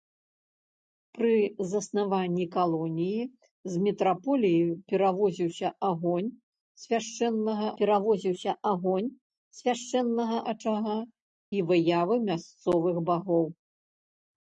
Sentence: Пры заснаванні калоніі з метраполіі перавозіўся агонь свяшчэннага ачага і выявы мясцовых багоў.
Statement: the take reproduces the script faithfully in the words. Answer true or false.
false